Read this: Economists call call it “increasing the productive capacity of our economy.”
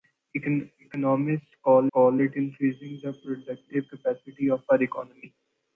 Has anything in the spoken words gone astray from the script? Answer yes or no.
no